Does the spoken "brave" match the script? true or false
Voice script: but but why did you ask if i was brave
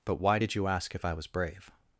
true